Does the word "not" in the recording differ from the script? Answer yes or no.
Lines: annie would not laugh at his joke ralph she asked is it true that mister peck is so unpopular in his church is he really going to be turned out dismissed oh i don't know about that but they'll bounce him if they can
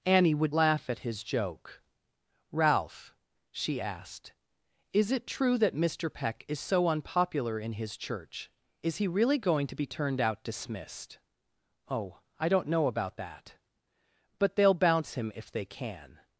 yes